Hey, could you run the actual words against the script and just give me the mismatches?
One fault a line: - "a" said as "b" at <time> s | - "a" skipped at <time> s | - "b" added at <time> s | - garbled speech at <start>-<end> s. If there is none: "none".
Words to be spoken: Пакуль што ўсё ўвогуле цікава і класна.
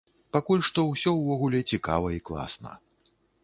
none